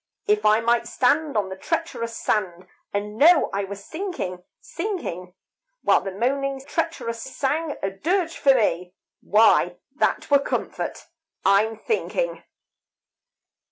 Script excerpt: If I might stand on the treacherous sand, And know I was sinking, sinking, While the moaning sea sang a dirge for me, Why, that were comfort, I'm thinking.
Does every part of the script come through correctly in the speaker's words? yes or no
no